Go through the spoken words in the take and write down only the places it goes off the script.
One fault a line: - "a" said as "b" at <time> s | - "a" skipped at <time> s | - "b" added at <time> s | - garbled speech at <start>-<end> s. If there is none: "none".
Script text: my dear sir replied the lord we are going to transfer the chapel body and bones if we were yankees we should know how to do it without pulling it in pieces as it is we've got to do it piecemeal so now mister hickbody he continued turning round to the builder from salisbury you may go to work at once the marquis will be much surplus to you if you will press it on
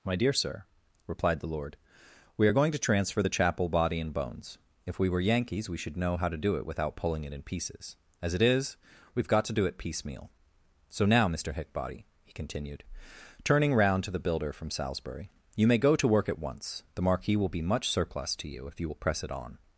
none